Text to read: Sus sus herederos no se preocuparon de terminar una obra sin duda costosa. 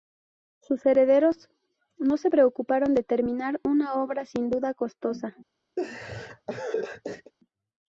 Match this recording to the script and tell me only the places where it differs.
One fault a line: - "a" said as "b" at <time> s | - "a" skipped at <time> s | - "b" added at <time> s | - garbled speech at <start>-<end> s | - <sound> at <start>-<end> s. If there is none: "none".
- "sus" skipped at 0.8 s
- laugh at 5.8-7.3 s